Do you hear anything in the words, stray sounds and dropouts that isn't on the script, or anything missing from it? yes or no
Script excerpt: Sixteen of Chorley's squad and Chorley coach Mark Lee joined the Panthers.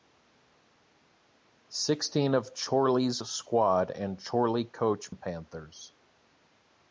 yes